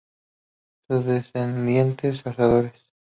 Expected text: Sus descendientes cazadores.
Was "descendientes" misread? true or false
false